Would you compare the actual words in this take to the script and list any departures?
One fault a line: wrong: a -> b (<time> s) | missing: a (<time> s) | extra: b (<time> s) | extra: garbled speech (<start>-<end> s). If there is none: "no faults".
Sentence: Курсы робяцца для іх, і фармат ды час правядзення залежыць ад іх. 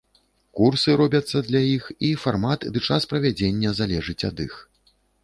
no faults